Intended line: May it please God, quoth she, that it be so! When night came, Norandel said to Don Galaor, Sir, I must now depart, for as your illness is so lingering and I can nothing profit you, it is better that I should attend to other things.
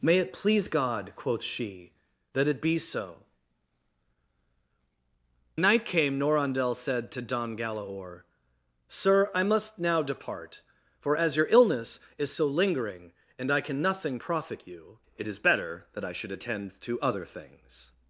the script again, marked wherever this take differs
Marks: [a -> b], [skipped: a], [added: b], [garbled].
May it please God, quoth she, that it be so! [skipped: When] night came, Norandel said to Don Galaor, Sir, I must now depart, for as your illness is so lingering and I can nothing profit you, it is better that I should attend to other things.